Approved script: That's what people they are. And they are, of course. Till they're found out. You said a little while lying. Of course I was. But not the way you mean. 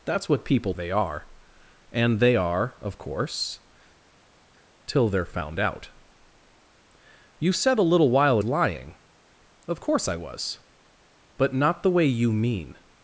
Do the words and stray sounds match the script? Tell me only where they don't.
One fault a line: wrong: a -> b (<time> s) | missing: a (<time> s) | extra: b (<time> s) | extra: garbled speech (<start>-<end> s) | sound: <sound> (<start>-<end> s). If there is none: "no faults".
no faults